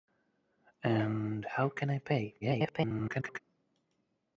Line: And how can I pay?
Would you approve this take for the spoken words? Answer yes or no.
no